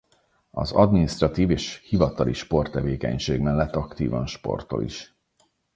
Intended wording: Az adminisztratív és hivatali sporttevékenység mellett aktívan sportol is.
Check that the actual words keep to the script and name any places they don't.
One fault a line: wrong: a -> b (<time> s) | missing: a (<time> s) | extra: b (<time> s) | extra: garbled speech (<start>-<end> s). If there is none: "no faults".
no faults